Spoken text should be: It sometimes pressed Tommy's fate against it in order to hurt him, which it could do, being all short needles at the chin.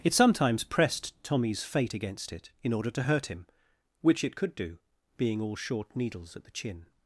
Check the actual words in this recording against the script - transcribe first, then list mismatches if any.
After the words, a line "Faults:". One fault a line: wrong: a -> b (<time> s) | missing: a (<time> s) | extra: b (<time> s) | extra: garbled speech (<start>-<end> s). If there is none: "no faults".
It sometimes pressed Tommy's fate against it in order to hurt him, which it could do, being all short needles at the chin.
Faults:
no faults